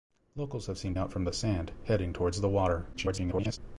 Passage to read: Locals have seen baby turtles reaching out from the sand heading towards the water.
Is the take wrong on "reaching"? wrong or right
wrong